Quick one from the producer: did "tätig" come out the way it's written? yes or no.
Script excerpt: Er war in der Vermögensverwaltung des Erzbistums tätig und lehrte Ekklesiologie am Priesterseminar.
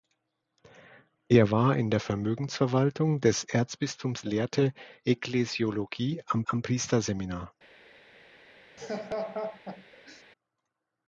no